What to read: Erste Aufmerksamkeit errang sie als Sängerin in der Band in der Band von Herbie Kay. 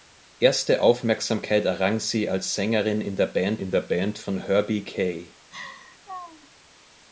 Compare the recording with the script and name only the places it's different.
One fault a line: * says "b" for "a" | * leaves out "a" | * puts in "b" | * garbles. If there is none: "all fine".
all fine